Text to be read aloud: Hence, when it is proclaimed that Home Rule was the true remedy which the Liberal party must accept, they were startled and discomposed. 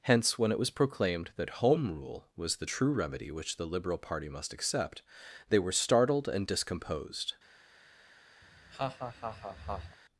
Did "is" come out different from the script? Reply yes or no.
yes